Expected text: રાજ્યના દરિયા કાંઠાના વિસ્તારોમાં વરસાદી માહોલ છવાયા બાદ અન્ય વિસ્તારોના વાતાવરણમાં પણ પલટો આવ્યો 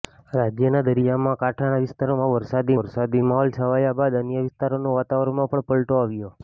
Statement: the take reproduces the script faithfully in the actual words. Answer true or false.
false